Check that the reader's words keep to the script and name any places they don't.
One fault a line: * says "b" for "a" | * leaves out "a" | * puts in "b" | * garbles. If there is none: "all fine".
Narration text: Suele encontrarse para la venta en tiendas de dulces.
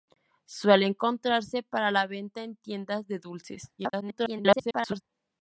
* garbles